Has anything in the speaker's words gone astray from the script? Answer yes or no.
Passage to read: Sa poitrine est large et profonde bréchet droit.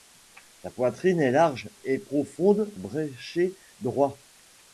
no